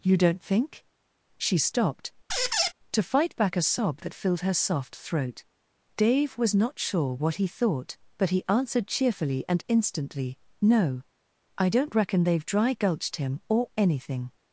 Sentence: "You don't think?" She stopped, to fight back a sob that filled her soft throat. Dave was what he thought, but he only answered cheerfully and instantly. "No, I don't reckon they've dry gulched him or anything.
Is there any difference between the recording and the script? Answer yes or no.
yes